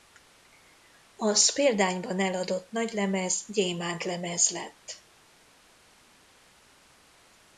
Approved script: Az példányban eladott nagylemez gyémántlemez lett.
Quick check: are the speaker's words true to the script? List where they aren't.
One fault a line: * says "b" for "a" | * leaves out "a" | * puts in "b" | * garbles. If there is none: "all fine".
all fine